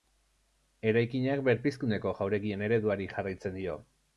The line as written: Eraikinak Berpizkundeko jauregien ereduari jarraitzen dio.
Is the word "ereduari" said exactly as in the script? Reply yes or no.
yes